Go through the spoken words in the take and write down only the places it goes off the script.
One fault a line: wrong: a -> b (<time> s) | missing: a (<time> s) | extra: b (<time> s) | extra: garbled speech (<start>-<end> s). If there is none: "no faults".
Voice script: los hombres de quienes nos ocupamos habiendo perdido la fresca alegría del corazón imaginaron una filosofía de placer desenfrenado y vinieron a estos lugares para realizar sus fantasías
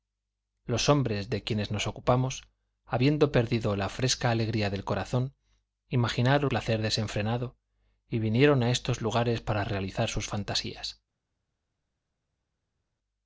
missing: una filosofía de (6.5 s)